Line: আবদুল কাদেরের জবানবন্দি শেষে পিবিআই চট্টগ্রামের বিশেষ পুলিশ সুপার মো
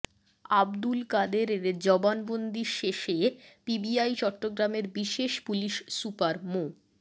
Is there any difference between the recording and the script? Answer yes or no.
no